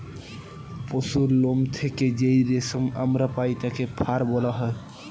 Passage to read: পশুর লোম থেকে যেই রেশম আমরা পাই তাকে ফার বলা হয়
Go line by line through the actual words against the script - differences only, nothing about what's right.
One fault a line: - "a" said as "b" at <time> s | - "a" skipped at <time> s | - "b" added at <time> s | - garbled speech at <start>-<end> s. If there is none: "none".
none